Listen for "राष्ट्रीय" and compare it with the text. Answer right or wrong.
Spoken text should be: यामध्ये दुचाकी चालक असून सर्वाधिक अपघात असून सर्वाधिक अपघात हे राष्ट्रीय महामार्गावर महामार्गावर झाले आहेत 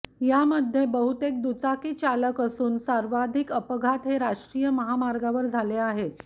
right